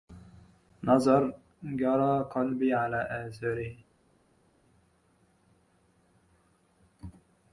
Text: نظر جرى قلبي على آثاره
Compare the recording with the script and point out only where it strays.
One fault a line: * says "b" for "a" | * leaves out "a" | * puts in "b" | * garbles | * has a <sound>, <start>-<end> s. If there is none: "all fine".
all fine